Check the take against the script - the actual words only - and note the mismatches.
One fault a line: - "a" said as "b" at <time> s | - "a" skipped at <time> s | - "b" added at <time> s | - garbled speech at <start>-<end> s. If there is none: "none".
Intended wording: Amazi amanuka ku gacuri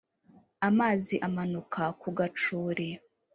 none